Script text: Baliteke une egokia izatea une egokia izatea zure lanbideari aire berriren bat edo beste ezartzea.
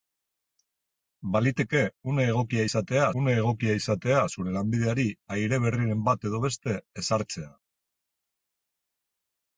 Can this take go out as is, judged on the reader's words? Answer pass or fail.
pass